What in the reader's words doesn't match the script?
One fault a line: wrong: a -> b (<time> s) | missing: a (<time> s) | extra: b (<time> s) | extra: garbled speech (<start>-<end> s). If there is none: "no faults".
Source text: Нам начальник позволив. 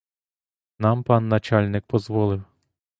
extra: пан (1.0 s)